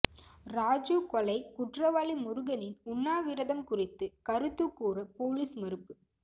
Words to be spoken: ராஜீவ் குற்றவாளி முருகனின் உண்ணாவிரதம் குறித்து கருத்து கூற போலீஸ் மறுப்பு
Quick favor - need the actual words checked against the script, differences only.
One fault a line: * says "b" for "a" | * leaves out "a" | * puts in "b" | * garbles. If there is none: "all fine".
* puts in "கொலை"